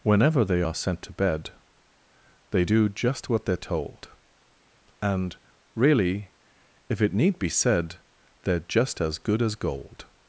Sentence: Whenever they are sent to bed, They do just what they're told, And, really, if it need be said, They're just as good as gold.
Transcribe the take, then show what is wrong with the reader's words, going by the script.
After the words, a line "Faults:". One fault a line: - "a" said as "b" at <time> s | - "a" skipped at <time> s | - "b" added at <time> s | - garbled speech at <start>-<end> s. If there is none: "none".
Whenever they are sent to bed, They do just what they're told, And, really, if it need be said, They're just as good as gold.
Faults:
none